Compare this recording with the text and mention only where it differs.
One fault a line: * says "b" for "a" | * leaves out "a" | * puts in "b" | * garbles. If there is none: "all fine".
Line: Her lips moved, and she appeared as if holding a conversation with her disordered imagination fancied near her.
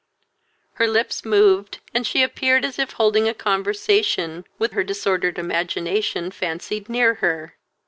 all fine